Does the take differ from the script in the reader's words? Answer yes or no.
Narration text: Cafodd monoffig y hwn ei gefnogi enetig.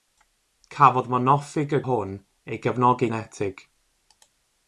no